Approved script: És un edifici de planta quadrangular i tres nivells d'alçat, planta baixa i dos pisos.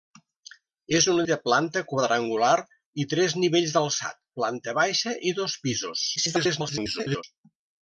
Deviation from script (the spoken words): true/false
true